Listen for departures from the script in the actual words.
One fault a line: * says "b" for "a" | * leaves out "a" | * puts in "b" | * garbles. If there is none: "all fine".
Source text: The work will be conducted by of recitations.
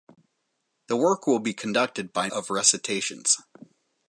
all fine